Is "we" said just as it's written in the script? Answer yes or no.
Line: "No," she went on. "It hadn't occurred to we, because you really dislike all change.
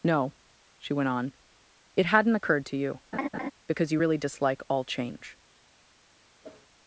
no